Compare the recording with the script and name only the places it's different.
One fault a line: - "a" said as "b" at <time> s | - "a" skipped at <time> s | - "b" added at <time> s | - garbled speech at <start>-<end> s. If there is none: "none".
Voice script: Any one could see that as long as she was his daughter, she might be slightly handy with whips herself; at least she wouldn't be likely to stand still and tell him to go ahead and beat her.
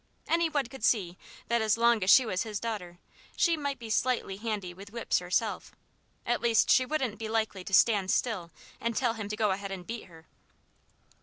none